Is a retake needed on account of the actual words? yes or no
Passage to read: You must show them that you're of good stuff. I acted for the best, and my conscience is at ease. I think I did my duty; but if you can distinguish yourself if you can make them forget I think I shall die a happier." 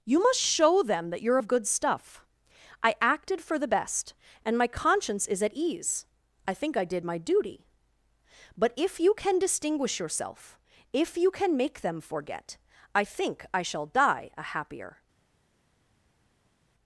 no